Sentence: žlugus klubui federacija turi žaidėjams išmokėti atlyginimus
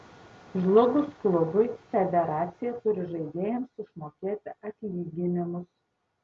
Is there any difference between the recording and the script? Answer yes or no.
no